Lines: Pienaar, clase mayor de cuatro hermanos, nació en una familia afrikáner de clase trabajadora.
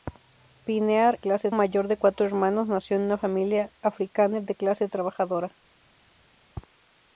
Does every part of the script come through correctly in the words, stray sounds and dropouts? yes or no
yes